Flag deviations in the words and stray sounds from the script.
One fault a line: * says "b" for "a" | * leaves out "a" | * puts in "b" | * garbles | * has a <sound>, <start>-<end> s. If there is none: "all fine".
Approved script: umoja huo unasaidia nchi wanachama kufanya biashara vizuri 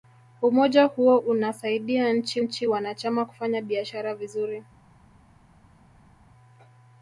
* puts in "nchi"